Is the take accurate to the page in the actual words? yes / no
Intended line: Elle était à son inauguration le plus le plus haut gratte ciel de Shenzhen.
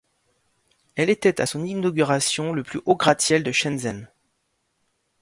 no